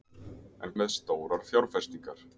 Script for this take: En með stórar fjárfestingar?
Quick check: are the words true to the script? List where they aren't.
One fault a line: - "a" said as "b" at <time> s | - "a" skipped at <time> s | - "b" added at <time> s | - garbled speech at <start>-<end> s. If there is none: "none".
none